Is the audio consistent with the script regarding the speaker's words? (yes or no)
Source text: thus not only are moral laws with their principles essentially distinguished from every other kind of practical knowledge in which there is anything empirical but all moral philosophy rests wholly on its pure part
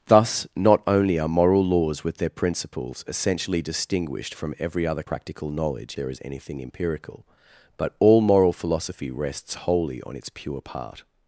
no